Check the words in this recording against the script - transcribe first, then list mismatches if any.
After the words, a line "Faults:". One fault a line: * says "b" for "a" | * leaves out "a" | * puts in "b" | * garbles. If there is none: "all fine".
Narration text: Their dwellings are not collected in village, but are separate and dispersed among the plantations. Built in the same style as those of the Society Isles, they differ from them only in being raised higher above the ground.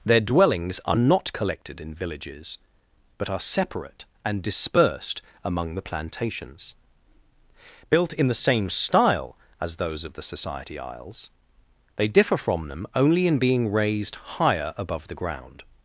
Their dwellings are not collected in villages, but are separate and dispersed among the plantations. Built in the same style as those of the Society Isles, they differ from them only in being raised higher above the ground.
Faults:
* says "villages" for "village"